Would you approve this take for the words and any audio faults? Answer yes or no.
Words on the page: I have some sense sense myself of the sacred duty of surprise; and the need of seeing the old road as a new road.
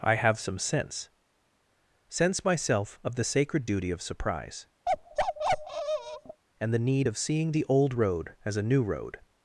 no